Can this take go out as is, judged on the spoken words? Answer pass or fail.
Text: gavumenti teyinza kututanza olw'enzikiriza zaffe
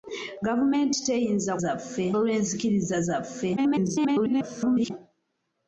fail